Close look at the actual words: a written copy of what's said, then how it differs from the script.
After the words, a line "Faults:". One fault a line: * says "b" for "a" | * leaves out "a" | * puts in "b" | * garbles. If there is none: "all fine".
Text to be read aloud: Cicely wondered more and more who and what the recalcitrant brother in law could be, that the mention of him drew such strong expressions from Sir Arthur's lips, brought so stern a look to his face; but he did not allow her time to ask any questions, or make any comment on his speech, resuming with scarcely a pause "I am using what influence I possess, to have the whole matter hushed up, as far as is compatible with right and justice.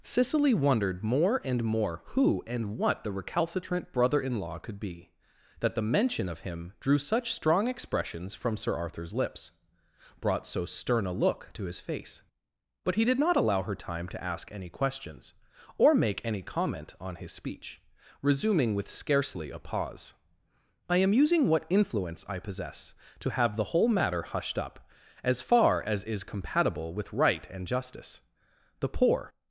Cicely wondered more and more who and what the recalcitrant brother in law could be, that the mention of him drew such strong expressions from Sir Arthur's lips, brought so stern a look to his face; but he did not allow her time to ask any questions, or make any comment on his speech, resuming with scarcely a pause "I am using what influence I possess, to have the whole matter hushed up, as far as is compatible with right and justice. The poor
Faults:
* puts in "The poor"